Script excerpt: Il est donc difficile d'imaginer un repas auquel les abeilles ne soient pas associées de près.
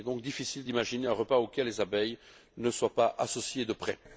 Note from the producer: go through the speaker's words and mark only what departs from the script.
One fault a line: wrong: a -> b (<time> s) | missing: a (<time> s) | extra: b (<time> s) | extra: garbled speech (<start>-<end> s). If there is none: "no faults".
no faults